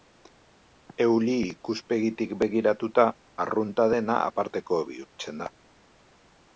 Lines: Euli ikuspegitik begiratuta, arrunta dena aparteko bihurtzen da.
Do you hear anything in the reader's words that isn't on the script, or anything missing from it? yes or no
no